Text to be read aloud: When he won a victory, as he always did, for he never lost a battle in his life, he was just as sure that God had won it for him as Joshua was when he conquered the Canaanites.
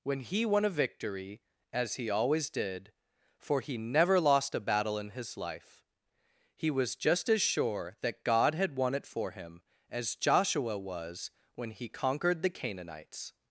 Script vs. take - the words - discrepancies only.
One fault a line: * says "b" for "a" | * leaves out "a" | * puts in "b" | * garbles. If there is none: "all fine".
all fine